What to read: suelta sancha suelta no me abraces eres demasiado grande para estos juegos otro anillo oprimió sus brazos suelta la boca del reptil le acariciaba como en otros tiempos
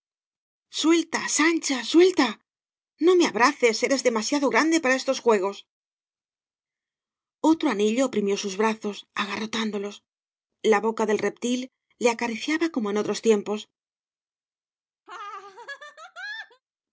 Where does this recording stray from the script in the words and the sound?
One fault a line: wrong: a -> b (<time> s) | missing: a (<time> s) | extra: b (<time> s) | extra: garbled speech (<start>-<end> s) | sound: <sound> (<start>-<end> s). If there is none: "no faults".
wrong: suelta -> agarrotándolos (9.1 s)
sound: laugh (15.1-16.6 s)